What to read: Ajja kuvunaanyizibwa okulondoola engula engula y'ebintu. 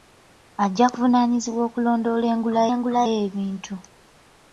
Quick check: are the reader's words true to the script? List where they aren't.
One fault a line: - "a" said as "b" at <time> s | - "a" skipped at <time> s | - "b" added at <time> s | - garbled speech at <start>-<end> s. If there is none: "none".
none